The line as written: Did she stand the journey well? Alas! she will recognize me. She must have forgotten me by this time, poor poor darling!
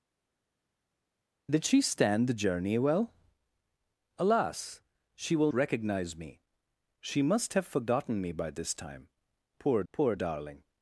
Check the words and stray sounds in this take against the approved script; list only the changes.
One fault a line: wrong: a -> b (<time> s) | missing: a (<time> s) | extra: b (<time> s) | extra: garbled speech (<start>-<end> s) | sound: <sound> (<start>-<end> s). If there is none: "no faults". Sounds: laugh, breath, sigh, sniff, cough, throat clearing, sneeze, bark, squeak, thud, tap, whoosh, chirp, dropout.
no faults